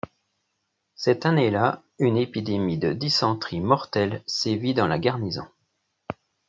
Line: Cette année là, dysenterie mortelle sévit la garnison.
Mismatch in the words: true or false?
true